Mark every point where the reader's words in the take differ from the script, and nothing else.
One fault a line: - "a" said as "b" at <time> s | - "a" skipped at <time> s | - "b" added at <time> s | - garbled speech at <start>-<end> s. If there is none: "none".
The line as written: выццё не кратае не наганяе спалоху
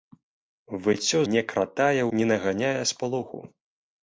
none